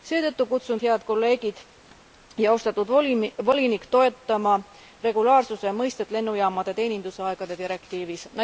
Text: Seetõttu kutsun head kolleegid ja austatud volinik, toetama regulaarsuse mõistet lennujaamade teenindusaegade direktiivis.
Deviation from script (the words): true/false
false